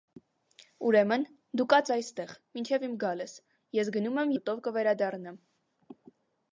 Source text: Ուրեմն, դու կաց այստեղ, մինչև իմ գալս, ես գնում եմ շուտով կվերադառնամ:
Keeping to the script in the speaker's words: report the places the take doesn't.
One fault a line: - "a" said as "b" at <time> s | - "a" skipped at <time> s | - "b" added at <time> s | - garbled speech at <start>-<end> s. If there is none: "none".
none